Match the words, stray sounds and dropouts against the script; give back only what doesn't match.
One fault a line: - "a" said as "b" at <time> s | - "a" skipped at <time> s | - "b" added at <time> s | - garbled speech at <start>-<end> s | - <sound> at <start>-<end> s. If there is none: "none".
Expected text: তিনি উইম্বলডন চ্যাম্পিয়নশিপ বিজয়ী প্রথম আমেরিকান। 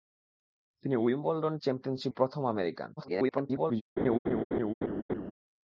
- "বিজয়ী" skipped at 2.1 s
- garbled speech at 3.0-3.8 s
- laugh at 4.0-5.3 s